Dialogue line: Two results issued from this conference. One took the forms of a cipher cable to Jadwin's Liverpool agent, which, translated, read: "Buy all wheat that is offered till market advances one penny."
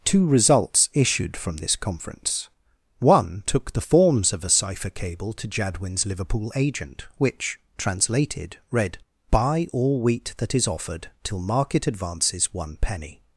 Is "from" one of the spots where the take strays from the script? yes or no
no